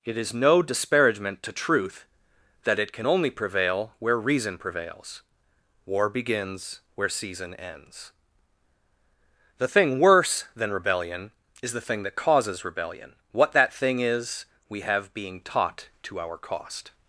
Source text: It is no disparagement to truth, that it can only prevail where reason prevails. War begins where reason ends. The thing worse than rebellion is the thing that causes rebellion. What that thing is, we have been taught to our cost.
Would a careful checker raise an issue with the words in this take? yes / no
yes